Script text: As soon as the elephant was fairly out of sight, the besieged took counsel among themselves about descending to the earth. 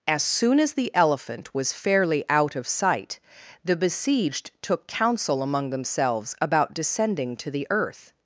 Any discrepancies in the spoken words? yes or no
no